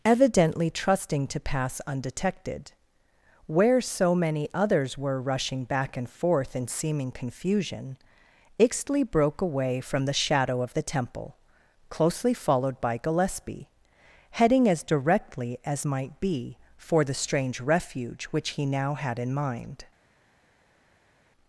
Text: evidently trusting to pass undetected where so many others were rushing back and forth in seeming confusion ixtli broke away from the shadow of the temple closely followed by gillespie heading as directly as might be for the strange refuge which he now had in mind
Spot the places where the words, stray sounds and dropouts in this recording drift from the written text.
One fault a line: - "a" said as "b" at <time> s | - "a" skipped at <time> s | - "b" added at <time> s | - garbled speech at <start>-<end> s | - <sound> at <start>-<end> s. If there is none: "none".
none